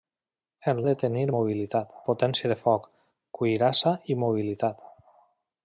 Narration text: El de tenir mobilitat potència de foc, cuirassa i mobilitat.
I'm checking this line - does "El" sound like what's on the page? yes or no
yes